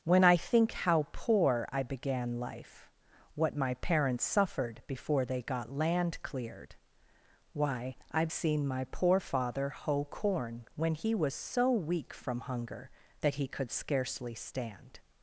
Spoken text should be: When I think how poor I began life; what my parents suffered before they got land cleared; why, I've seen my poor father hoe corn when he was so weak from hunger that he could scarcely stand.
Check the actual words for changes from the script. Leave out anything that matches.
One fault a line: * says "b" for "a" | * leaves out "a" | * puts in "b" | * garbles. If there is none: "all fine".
all fine